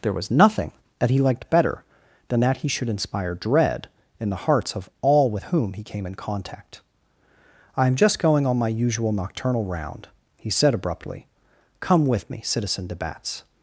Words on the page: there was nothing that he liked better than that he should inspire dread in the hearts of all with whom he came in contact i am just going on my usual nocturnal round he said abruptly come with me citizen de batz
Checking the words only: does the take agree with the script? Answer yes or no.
yes